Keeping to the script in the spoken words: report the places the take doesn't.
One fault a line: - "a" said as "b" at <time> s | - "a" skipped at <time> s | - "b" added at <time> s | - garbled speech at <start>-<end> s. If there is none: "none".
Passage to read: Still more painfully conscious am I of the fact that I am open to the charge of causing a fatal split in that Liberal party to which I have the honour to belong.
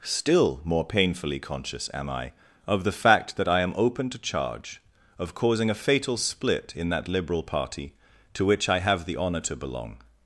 - "the" skipped at 4.2 s